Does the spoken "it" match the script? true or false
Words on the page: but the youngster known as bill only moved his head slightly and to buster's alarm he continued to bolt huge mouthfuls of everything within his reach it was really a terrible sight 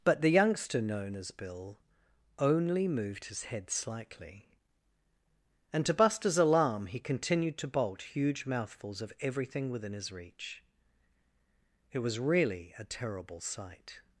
true